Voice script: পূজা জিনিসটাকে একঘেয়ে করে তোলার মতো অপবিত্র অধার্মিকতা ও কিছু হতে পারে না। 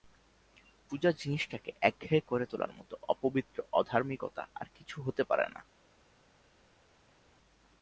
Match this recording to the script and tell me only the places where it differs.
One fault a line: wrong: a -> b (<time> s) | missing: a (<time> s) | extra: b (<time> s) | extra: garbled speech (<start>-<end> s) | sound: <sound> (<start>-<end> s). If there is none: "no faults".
wrong: ও -> আর (4.5 s)